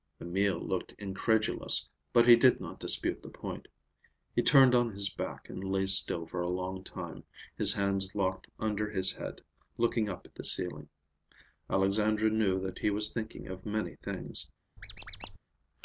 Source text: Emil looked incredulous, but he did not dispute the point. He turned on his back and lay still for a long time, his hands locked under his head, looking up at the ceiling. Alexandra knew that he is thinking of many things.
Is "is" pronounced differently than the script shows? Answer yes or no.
yes